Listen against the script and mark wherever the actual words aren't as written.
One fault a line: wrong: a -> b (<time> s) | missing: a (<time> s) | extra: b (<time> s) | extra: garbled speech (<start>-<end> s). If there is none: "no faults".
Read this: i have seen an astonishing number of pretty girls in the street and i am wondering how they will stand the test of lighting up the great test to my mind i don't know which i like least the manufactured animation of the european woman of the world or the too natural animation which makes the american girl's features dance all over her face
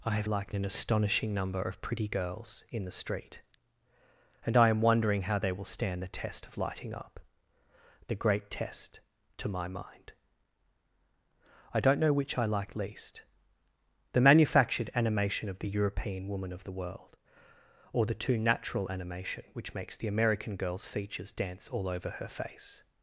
wrong: seen -> like (0.2 s)